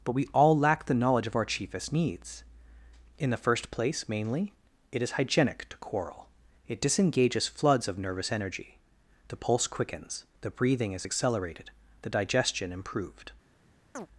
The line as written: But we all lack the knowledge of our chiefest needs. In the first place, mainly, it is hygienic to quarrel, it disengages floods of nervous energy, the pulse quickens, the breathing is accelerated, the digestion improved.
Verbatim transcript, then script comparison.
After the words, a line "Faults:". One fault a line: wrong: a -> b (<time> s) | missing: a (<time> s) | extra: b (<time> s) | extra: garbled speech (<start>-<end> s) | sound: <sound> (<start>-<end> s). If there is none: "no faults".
But we all lack the knowledge of our chiefest needs. In the first place, mainly, it is hygienic to quarrel, it disengages floods of nervous energy, the pulse quickens, the breathing is accelerated, the digestion improved.
Faults:
sound: chirp (13.9-14.1 s)